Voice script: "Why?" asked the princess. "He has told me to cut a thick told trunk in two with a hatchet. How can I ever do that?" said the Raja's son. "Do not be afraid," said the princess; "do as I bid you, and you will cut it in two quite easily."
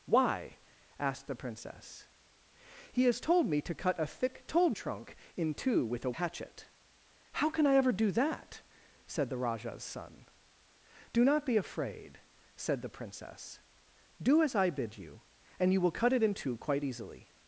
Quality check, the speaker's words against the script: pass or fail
pass